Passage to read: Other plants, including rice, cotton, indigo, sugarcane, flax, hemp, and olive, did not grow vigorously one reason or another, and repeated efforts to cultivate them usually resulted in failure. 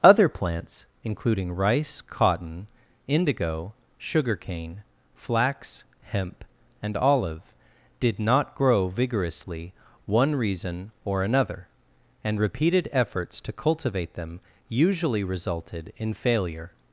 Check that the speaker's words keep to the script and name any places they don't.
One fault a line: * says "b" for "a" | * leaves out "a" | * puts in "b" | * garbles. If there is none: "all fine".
all fine